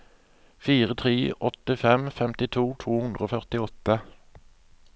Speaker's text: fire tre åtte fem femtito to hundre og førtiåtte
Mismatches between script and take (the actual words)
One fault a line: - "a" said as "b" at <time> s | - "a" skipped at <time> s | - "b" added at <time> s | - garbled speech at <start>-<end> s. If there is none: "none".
none